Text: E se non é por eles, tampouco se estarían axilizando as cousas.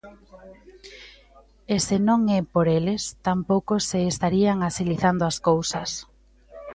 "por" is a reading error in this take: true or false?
false